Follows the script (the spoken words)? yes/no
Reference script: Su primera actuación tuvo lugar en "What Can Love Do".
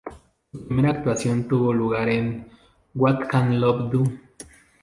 yes